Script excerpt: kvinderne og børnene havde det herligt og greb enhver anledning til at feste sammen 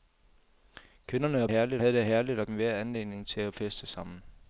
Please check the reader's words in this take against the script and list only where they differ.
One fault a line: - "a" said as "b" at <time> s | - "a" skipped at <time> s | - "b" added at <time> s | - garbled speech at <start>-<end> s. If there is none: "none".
- "børnene" said as "herligt" at 1.5 s
- "greb" skipped at 2.5 s